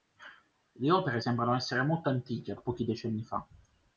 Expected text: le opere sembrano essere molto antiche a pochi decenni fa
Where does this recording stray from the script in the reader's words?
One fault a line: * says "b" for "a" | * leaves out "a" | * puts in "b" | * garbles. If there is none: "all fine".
all fine